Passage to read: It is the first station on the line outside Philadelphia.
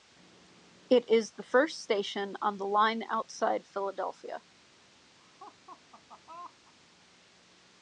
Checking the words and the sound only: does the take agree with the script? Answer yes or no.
no